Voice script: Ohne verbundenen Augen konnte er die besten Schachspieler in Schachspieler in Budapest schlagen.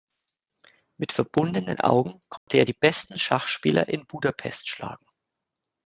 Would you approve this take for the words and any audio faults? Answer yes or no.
no